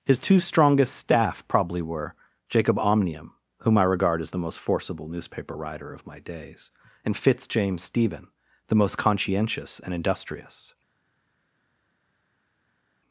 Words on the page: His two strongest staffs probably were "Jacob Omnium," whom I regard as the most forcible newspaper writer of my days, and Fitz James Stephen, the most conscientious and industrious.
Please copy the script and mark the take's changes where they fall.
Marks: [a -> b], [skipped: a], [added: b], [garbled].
His two strongest [staffs -> staff] probably were "Jacob Omnium," whom I regard as the most forcible newspaper writer of my days, and Fitz James Stephen, the most conscientious and industrious.